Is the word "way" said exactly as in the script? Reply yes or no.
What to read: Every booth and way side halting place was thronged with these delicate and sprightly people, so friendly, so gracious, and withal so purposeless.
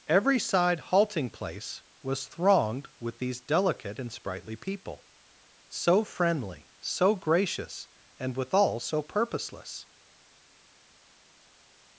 no